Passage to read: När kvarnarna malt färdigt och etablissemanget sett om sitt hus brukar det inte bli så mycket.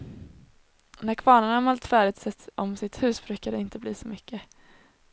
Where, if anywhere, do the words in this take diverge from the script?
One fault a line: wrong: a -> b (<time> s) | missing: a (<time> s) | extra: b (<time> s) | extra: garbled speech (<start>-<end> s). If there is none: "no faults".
missing: och etablissemanget (2.2 s)